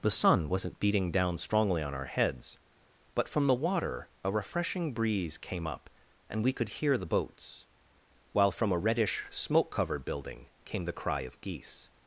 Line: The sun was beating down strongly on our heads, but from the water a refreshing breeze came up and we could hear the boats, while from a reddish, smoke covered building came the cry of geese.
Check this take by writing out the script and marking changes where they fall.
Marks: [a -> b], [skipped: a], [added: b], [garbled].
The sun [was -> wasn't] beating down strongly on our heads, but from the water a refreshing breeze came up and we could hear the boats, while from a reddish, smoke covered building came the cry of geese.